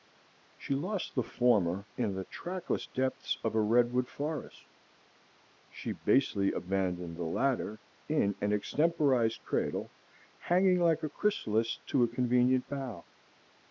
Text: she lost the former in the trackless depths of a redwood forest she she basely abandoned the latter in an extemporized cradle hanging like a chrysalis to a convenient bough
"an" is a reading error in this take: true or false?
false